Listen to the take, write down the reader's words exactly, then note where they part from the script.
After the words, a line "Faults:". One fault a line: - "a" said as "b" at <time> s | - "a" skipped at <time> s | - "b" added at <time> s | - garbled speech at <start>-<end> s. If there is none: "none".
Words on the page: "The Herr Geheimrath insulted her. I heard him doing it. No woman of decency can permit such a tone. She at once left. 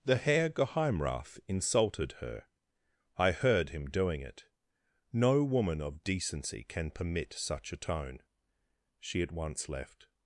"The Herr Geheimrath insulted her. I heard him doing it. No woman of decency can permit such a tone. She at once left.
Faults:
none